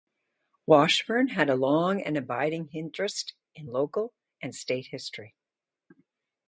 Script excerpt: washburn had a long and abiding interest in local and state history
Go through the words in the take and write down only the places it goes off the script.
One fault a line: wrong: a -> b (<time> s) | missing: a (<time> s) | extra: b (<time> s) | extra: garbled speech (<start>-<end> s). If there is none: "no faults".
no faults